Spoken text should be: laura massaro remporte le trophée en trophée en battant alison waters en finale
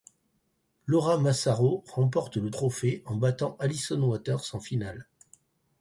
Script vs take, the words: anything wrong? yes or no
yes